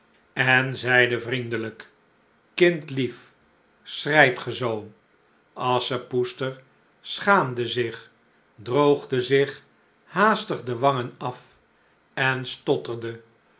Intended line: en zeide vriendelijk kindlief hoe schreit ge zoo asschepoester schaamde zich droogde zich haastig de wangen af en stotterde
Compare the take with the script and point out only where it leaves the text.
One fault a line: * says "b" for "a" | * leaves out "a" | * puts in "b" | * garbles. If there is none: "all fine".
* leaves out "hoe"